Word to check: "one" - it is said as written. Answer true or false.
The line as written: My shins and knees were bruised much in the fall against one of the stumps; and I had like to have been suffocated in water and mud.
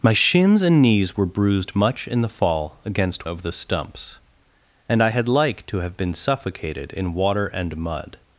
false